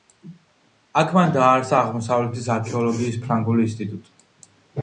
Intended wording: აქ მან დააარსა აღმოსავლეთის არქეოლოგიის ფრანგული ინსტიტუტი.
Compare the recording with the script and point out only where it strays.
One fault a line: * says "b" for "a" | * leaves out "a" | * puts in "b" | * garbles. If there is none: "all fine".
all fine